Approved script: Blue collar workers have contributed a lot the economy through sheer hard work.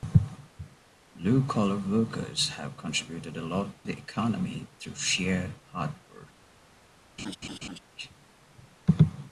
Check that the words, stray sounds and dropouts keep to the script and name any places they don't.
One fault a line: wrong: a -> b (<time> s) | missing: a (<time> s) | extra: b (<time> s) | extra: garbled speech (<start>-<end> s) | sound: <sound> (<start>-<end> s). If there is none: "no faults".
sound: laugh (7.2-7.8 s)